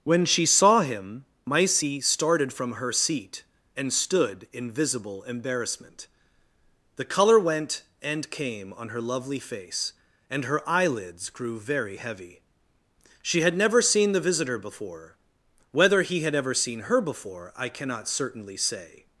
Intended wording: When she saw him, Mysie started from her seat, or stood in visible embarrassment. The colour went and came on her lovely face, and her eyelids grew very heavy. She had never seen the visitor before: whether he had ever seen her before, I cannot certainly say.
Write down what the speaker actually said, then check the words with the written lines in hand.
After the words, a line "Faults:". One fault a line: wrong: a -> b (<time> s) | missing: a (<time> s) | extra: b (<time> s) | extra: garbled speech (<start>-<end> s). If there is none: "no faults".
When she saw him, Mysie started from her seat, and stood in visible embarrassment. The colour went and came on her lovely face, and her eyelids grew very heavy. She had never seen the visitor before: whether he had ever seen her before, I cannot certainly say.
Faults:
wrong: or -> and (3.8 s)